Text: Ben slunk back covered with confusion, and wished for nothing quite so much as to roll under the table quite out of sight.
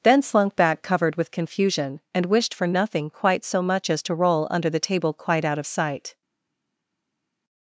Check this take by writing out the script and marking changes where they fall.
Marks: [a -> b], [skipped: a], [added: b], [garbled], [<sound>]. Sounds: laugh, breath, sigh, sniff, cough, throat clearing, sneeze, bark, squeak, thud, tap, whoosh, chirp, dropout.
[Ben -> Then] slunk back covered with confusion, and wished for nothing quite so much as to roll under the table quite out of sight.